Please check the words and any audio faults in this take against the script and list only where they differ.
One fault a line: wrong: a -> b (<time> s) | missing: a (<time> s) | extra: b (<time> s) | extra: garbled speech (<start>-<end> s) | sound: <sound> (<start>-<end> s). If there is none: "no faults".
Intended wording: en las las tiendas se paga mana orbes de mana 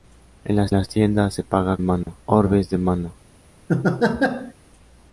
sound: dropout (2.0-2.1 s)
sound: laugh (3.7-4.5 s)